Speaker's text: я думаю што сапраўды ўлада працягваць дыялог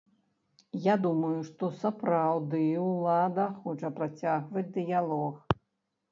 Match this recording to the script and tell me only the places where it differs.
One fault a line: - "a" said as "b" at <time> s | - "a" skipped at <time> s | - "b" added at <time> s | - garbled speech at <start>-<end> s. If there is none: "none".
- "хоча" added at 3.6 s